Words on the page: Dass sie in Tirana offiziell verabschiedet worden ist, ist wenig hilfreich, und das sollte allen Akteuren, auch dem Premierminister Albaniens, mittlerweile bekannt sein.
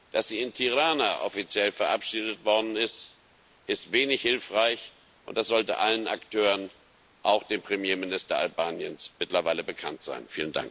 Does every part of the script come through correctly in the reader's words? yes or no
yes